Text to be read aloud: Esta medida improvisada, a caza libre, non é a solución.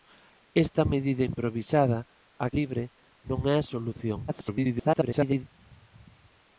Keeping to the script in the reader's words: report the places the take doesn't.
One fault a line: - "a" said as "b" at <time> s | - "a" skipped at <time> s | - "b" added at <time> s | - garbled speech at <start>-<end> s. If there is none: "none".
- "caza" skipped at 2.5 s
- garbled speech at 4.3-5.4 s